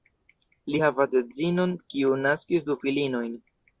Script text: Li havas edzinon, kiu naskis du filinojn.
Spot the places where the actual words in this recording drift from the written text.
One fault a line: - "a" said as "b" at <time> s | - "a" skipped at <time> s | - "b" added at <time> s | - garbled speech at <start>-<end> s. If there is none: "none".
none